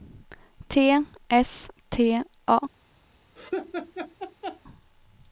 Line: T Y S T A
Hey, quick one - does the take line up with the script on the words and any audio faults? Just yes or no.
no